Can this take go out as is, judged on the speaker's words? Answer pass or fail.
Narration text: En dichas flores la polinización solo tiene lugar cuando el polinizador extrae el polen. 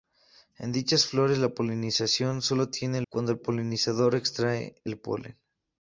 fail